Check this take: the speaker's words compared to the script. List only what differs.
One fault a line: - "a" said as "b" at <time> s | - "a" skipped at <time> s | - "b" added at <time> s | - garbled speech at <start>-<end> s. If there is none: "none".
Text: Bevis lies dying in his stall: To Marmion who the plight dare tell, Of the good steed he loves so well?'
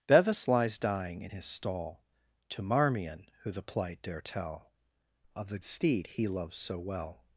- "good" skipped at 5.6 s